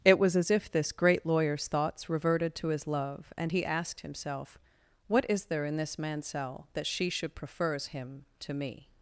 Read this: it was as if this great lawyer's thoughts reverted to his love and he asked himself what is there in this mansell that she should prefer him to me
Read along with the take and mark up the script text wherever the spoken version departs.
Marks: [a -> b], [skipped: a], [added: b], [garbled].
it was as if this great lawyer's thoughts reverted to his love and he asked himself what is there in this mansell that she should [prefer -> prefers] him to me